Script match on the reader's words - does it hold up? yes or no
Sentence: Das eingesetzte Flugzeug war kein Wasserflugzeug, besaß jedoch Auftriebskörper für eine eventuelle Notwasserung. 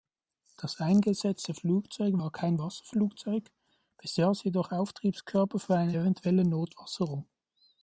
yes